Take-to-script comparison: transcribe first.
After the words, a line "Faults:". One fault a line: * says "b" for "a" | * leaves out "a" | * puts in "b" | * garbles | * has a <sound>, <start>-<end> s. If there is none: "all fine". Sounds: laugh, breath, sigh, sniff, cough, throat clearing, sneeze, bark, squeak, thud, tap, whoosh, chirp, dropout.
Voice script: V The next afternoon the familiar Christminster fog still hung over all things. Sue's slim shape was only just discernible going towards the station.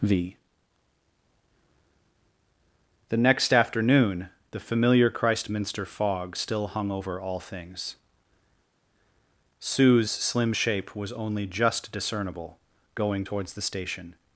V The next afternoon the familiar Christminster fog still hung over all things. Sue's slim shape was only just discernible going towards the station.
Faults:
all fine